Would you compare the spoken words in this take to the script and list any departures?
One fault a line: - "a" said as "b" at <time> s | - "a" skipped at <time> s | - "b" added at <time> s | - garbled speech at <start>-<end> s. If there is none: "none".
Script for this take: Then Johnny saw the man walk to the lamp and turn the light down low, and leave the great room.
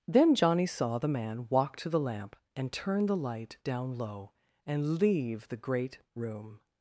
none